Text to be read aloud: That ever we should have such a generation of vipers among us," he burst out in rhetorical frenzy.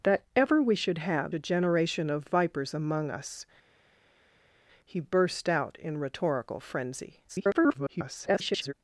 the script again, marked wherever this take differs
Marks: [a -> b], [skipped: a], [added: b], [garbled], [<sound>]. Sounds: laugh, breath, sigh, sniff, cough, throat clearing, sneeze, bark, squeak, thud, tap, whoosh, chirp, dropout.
That ever we should have [skipped: such] a generation of vipers among us," he burst out in rhetorical frenzy. [garbled]